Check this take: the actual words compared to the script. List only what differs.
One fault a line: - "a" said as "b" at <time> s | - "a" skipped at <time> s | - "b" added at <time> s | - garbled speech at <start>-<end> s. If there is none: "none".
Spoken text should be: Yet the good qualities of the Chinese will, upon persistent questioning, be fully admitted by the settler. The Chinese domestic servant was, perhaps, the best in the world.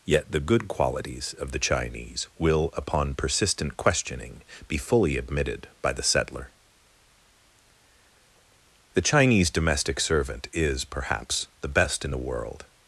- "was" said as "is" at 10.5 s